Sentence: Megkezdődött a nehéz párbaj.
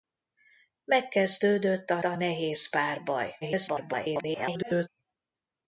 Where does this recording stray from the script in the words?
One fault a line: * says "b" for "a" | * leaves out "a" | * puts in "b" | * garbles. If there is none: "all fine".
* puts in "a"
* garbles